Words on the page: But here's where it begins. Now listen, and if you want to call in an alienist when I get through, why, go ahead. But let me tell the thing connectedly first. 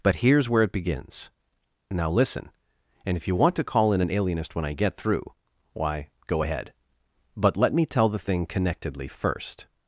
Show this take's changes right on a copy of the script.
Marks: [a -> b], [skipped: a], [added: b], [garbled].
But here's where it begins. Now listen, and if you want to call in an alienist when I get through, why, go ahead. But let me tell the thing connectedly first.